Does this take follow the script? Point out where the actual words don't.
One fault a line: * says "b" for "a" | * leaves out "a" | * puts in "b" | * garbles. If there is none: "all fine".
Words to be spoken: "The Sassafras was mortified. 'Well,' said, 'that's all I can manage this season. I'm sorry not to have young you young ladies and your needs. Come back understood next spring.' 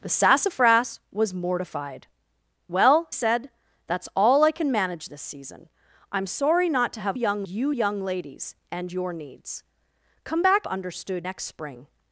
all fine